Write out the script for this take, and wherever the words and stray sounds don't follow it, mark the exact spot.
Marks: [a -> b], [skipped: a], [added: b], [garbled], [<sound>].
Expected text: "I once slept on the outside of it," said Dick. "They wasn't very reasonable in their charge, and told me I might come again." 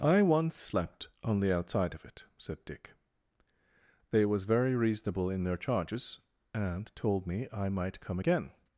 "I once slept on the outside of it," said Dick. "They [wasn't -> was] very reasonable in their [charge, -> charges] and told me I might come again."